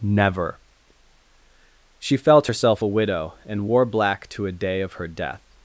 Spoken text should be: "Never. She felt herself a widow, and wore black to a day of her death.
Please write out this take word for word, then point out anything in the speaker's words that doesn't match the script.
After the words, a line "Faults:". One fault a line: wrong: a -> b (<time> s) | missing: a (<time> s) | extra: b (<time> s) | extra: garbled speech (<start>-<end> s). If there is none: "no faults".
"Never. She felt herself a widow, and wore black to a day of her death.
Faults:
no faults